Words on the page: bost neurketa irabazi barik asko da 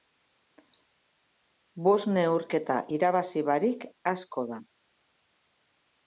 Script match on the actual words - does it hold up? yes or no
yes